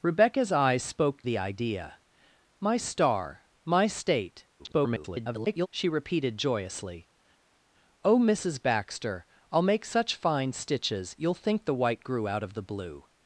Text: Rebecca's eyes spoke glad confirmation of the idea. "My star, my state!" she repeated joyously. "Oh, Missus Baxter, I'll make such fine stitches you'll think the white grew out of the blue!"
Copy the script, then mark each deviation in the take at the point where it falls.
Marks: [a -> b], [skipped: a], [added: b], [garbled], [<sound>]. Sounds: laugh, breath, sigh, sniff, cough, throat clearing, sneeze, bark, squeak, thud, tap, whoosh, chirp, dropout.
Rebecca's eyes spoke [skipped: glad confirmation of] the idea. "My star, my state!" [garbled] she repeated joyously. "Oh, Missus Baxter, I'll make such fine stitches you'll think the white grew out of the blue!"